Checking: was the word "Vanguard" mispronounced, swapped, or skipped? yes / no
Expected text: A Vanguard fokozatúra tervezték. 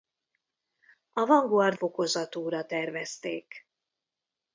no